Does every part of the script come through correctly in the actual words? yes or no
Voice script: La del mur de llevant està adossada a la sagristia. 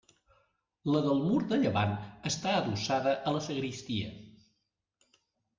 yes